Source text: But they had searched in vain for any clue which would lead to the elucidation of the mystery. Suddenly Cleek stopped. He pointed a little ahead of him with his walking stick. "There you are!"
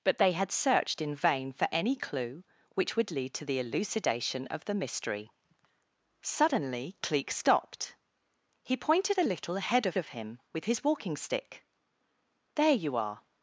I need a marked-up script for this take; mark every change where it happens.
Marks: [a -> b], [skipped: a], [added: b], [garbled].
But they had searched in vain for any clue which would lead to the elucidation of the mystery. Suddenly Cleek stopped. He pointed a little ahead of [added: of] him with his walking stick. "There you are!"